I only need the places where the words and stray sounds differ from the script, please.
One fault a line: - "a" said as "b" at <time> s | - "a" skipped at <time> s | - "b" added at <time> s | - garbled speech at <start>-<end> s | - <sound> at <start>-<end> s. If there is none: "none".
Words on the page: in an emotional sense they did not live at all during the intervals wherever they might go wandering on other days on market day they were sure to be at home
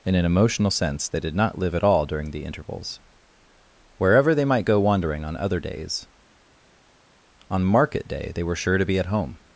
none